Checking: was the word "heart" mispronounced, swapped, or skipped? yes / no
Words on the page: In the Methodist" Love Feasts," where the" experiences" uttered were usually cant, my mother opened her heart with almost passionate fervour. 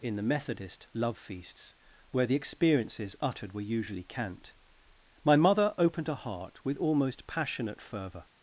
no